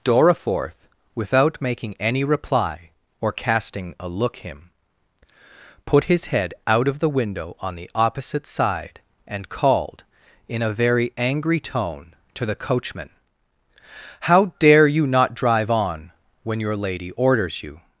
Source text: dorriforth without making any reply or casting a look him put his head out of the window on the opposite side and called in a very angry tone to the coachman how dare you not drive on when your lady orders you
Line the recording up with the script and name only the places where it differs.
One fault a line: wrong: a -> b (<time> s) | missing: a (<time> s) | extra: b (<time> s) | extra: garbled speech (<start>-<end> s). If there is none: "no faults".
no faults